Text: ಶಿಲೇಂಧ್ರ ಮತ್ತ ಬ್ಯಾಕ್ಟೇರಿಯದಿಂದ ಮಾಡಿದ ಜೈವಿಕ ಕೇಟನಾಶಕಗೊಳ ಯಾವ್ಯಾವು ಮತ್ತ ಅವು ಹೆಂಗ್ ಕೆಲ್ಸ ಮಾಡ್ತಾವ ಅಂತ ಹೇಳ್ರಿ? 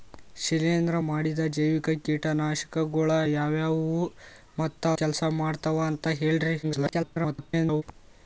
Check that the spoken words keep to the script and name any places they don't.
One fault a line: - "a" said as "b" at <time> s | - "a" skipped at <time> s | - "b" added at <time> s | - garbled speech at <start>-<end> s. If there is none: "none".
- "ಮತ್ತ ಬ್ಯಾಕ್ಟೇರಿಯದಿಂದ" skipped at 1.0 s
- "ಅವು ಹೆಂಗ್" skipped at 4.8 s
- garbled speech at 6.6-7.8 s